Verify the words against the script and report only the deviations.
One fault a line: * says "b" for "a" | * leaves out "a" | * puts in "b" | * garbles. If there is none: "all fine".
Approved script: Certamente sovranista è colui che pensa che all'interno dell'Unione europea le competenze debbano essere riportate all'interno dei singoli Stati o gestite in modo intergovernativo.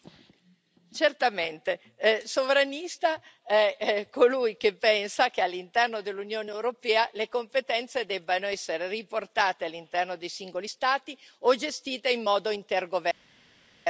all fine